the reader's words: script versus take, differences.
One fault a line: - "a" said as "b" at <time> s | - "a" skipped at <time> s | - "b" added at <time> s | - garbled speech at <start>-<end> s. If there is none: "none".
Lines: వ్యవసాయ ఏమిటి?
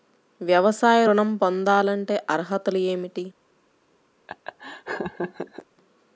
- "ఋణం పొందాలంటే అర్హతలు" added at 1.0 s